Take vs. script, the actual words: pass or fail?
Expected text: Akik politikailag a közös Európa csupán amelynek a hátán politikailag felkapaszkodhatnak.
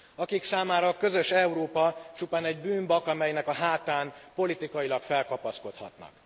fail